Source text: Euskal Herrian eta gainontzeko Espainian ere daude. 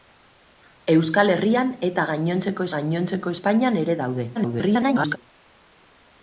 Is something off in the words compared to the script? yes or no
yes